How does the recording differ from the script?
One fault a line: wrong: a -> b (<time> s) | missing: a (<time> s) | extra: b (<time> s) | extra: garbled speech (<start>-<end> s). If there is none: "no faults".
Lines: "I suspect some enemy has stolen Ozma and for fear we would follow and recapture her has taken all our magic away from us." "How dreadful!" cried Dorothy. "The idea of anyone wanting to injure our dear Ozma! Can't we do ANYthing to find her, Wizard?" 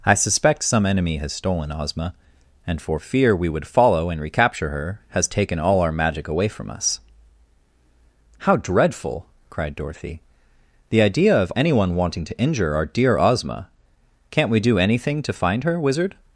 no faults